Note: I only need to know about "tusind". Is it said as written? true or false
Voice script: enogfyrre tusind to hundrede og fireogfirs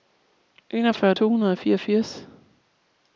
false